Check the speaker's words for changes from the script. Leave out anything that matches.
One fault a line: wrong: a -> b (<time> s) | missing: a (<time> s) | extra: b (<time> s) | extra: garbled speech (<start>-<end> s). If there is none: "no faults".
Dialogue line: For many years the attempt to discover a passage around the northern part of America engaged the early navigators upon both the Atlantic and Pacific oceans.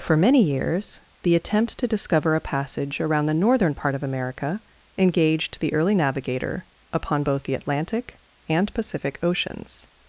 wrong: navigators -> navigator (5.9 s)